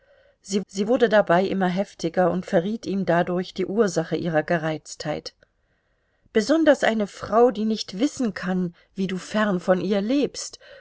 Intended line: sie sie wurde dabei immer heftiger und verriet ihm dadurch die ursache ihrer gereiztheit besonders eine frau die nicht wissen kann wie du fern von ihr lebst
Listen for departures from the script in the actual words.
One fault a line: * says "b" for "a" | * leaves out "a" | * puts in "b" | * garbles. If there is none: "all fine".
all fine